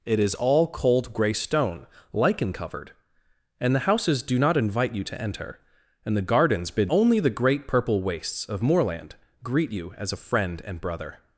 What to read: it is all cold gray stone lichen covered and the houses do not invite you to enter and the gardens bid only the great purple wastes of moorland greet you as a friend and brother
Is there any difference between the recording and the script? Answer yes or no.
no